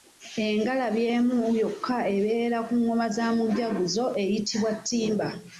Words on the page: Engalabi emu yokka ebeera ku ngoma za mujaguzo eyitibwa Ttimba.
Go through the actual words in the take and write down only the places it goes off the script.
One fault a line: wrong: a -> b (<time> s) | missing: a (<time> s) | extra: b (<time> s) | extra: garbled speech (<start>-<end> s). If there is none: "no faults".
no faults